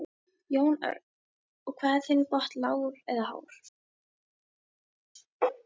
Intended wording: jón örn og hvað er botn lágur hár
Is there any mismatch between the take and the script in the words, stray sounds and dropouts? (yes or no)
yes